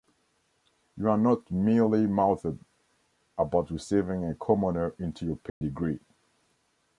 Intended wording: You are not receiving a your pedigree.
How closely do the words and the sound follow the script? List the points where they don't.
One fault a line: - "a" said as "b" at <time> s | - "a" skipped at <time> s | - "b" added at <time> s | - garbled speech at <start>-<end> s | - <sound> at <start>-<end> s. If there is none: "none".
- "mealy mouthed about" added at 1.5 s
- "commoner into" added at 4.3 s
- dropout at 5.5-5.6 s